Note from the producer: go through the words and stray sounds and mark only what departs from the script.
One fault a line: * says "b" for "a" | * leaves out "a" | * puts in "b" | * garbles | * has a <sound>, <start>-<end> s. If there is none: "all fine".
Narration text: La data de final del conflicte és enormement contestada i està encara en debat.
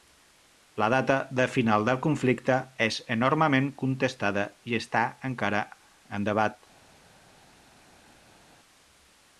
all fine